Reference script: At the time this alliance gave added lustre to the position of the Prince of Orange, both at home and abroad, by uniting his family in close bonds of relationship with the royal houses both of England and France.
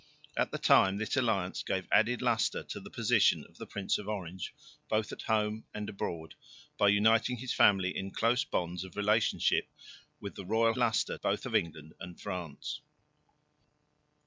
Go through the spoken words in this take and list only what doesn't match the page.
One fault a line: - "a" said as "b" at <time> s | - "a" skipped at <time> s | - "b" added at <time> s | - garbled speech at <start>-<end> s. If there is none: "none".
- "houses" said as "lustre" at 10.8 s